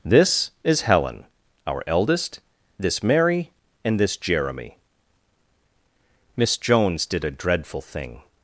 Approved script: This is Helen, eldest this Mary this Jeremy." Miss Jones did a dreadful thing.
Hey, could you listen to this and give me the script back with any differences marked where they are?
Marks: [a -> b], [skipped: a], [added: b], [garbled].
This is Helen, [added: our] eldest this Mary [added: and] this Jeremy." Miss Jones did a dreadful thing.